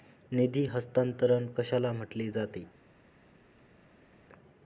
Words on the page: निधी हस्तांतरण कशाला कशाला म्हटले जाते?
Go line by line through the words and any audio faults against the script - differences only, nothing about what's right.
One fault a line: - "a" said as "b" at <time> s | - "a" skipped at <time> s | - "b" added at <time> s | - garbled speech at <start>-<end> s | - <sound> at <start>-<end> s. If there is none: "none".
- "कशाला" skipped at 1.9 s